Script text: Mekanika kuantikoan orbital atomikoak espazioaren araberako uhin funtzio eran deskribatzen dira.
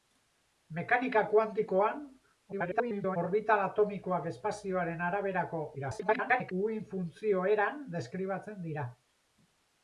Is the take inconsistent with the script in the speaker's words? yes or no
yes